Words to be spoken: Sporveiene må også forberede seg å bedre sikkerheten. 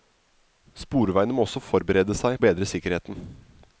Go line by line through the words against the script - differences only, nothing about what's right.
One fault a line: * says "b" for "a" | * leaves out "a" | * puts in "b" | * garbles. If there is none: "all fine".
all fine